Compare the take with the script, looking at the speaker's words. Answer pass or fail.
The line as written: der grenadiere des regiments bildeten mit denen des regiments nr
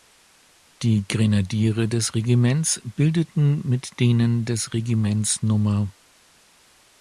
fail